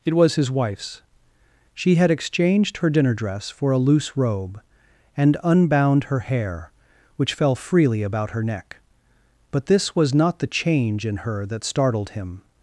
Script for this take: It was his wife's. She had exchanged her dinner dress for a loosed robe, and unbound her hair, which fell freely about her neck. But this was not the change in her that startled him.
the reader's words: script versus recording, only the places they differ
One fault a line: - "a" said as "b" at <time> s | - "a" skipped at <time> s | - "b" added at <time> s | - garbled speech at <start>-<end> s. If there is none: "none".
- "loosed" said as "loose" at 3.8 s